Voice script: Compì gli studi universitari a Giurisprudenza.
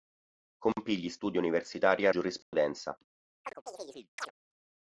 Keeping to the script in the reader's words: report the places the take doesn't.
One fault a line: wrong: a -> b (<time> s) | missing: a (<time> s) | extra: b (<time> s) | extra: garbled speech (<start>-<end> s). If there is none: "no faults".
no faults